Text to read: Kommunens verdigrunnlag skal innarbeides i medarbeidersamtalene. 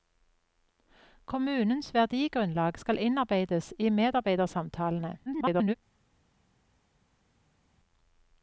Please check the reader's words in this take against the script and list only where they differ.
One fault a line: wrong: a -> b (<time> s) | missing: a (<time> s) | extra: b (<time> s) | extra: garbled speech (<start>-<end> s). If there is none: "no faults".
extra: garbled speech (5.3-5.7 s)